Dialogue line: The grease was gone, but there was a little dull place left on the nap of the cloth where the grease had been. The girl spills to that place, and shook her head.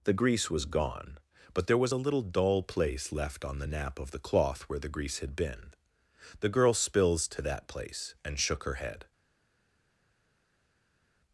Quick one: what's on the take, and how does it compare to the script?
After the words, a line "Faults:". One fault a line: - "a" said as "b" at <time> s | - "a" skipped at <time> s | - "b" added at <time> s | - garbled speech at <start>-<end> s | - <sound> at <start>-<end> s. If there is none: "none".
The grease was gone, but there was a little dull place left on the nap of the cloth where the grease had been. The girl spills to that place, and shook her head.
Faults:
none